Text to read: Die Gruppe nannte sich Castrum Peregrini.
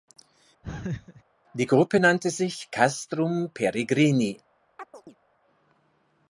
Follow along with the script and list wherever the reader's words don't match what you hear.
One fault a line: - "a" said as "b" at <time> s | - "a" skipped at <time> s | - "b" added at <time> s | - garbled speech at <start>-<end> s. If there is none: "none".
none